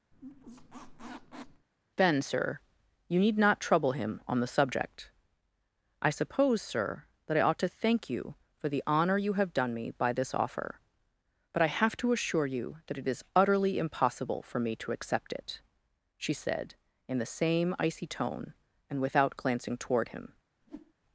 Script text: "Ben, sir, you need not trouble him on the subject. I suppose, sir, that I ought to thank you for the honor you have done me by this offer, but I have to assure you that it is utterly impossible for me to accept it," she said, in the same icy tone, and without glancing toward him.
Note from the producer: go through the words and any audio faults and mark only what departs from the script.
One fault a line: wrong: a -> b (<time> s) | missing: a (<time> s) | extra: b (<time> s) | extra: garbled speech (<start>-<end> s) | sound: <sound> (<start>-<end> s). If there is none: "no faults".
sound: squeak (0.1-1.7 s)
sound: whoosh (20.6-20.9 s)